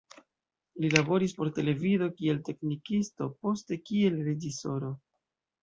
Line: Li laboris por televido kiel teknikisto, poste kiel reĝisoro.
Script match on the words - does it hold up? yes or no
yes